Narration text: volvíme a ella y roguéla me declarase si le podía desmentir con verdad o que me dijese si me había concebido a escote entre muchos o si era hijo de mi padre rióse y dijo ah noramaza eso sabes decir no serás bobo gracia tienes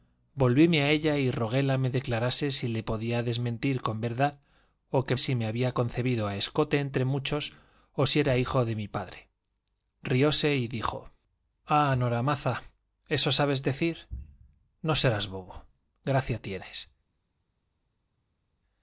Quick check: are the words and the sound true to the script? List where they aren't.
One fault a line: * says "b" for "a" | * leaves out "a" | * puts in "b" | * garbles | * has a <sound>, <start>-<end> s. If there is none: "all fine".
* leaves out "me dijese"